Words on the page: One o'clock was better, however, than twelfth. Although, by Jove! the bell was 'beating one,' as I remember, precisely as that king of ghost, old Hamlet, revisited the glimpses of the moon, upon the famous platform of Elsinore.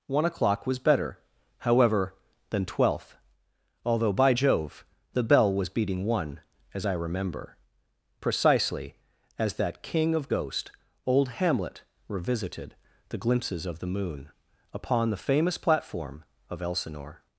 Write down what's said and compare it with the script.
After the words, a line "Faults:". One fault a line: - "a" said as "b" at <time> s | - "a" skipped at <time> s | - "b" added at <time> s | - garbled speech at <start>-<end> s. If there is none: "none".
One o'clock was better, however, than twelfth. Although, by Jove! the bell was 'beating one,' as I remember, precisely as that king of ghost, old Hamlet, revisited the glimpses of the moon, upon the famous platform of Elsinore.
Faults:
none